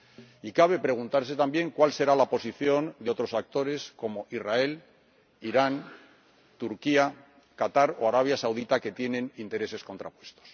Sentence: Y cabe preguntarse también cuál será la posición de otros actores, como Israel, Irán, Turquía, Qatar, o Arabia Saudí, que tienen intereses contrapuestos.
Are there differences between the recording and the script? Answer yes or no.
no